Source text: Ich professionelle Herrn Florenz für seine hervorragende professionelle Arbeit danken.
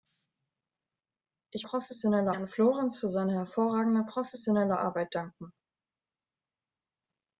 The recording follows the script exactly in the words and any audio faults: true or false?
true